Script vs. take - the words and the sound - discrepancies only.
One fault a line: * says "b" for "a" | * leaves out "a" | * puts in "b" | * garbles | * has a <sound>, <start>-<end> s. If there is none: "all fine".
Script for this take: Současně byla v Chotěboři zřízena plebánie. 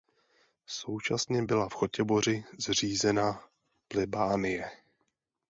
all fine